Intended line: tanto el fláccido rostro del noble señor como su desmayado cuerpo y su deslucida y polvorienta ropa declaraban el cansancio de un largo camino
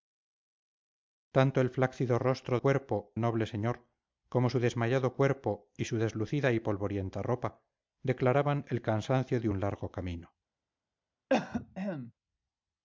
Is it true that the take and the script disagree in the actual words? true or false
true